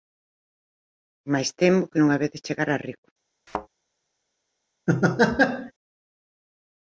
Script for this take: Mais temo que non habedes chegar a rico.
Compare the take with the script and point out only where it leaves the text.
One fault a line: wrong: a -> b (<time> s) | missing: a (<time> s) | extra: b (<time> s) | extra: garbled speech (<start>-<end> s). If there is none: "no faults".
no faults